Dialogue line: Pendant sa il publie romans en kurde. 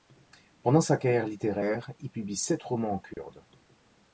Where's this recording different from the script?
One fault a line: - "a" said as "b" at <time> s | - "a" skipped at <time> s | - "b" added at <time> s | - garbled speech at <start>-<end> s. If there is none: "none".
- "carrière littéraire" added at 1.0 s
- "sept" added at 2.4 s